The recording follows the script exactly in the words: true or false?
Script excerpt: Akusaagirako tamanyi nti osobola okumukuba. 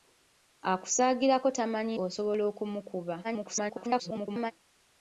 false